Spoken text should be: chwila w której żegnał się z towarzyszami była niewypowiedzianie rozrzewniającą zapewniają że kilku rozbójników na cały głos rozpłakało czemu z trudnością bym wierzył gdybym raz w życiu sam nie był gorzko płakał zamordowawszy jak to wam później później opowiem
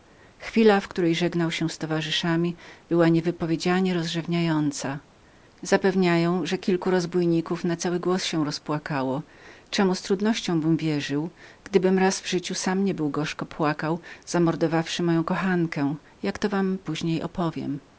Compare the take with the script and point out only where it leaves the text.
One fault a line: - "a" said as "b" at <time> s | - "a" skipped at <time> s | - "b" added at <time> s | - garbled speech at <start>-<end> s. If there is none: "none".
- "się" added at 8.2 s
- "moją kochankę" added at 15.0 s
- "później" skipped at 17.2 s